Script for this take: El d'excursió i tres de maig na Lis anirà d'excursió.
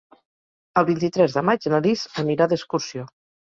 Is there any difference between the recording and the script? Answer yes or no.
yes